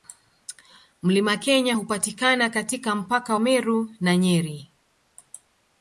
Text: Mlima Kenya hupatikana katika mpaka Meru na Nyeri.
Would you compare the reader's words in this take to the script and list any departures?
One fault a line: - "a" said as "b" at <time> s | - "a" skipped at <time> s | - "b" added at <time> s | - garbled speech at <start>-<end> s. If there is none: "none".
none